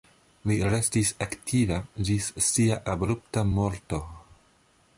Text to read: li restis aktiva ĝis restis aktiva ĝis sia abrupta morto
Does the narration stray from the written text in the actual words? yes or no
yes